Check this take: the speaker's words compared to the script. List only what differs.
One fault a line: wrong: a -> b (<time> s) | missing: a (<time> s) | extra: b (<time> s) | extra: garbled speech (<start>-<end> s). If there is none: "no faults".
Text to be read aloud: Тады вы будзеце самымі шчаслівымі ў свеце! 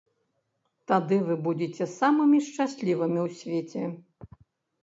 no faults